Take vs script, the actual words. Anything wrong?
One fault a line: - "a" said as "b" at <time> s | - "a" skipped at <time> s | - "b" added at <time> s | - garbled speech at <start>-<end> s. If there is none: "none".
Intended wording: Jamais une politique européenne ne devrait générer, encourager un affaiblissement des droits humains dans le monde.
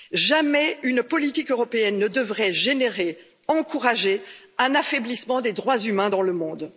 none